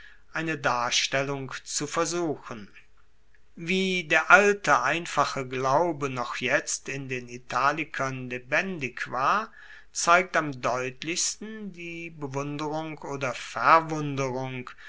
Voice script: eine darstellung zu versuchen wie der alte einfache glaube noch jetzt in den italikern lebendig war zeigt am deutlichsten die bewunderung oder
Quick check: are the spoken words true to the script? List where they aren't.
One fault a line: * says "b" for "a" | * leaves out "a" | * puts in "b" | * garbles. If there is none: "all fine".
all fine